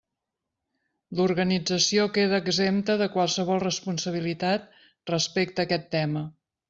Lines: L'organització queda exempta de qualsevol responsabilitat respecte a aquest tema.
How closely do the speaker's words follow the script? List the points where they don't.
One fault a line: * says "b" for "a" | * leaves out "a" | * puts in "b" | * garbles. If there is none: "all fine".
all fine